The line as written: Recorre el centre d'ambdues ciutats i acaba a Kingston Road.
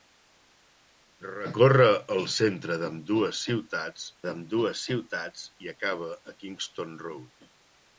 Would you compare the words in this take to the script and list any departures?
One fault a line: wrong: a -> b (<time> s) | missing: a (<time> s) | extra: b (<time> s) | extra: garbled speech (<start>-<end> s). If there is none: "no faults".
extra: d'ambdues ciutats (4.3 s)